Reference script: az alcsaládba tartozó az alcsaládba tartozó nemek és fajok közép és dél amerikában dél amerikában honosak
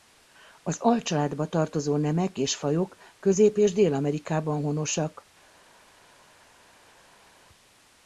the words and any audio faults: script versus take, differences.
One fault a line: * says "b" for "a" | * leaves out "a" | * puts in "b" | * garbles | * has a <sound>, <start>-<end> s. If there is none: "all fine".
* leaves out "az alcsaládba tartozó"
* leaves out "dél amerikában"